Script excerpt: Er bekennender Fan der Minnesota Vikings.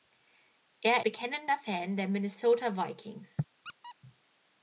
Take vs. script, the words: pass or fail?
pass